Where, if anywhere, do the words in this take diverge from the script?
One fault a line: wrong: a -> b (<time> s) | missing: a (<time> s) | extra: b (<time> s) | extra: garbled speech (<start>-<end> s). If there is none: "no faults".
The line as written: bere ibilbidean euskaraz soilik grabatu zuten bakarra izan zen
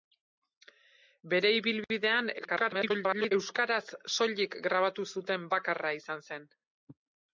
extra: garbled speech (2.4-3.3 s)